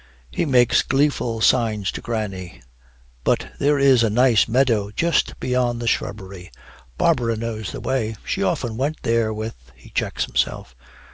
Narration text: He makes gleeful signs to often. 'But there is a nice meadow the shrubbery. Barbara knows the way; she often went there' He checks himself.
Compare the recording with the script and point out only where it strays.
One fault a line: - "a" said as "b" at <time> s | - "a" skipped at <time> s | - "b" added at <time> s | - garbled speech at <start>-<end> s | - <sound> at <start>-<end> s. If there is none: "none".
- "often" said as "granny" at 2.0 s
- "just beyond" added at 4.9 s
- "with" added at 9.3 s